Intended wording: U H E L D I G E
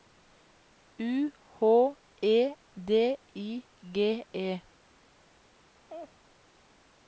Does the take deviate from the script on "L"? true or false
true